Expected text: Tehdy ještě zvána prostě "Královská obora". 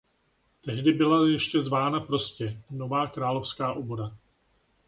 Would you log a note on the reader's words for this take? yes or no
yes